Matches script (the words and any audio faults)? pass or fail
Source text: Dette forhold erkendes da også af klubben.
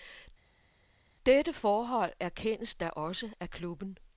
pass